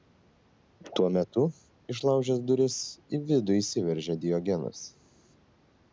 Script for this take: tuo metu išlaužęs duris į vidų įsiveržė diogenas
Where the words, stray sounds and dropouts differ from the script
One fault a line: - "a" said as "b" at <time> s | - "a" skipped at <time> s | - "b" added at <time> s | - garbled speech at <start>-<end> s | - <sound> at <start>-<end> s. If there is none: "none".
none